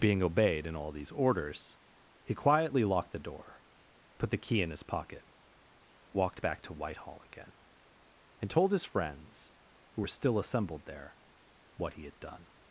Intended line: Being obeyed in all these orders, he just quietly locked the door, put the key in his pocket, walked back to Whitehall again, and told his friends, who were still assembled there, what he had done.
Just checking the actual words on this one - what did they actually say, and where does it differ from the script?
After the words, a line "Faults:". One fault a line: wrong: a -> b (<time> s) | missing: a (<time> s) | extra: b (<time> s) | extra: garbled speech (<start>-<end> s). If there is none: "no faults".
Being obeyed in all these orders, he quietly locked the door, put the key in his pocket, walked back to Whitehall again, and told his friends, who were still assembled there, what he had done.
Faults:
missing: just (2.3 s)